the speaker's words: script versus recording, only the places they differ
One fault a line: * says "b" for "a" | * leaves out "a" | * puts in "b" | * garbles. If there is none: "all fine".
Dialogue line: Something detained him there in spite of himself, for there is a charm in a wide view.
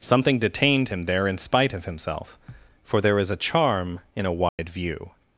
all fine